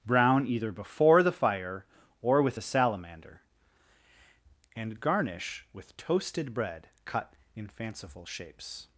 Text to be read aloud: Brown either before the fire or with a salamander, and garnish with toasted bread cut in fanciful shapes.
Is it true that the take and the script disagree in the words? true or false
false